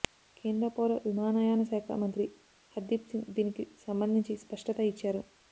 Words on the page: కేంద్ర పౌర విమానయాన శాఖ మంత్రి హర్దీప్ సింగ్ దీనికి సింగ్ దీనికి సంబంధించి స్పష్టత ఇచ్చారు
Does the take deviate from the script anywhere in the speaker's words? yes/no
yes